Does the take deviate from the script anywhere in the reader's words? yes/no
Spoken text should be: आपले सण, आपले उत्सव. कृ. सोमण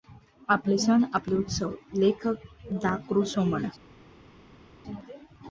yes